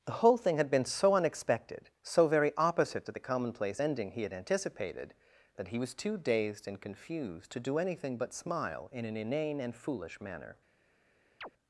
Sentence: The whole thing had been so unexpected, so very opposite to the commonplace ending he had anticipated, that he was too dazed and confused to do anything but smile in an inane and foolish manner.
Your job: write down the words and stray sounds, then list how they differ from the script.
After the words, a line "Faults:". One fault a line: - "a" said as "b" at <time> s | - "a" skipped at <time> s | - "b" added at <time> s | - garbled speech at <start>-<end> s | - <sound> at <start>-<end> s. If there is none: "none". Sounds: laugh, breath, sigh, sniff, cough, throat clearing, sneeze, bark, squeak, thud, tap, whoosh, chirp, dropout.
The whole thing had been so unexpected, so very opposite to the commonplace ending he had anticipated, that he was too dazed and confused to do anything but smile in an inane and foolish manner.
Faults:
- chirp at 11.4-11.5 s